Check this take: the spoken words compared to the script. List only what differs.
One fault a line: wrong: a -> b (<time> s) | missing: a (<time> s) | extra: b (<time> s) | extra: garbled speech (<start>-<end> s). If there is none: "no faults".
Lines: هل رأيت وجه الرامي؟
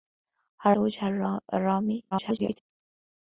missing: رأيت (0.7 s)
extra: garbled speech (2.1-2.6 s)